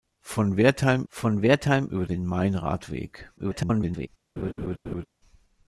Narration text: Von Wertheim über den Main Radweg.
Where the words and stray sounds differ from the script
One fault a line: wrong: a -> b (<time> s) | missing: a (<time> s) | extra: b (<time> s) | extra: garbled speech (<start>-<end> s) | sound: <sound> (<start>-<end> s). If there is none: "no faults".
extra: von Wertheim (1.1 s)
extra: garbled speech (3.4-4.1 s)
sound: laugh (4.4-5.1 s)